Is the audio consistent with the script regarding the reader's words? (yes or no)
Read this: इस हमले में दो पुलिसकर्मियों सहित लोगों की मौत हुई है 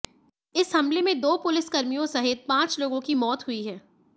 no